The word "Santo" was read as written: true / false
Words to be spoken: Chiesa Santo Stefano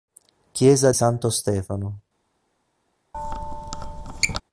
true